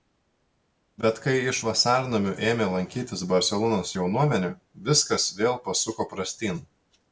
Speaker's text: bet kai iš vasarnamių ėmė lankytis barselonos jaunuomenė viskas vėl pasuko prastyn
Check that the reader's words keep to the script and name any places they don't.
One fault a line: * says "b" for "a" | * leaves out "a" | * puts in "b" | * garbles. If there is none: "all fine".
all fine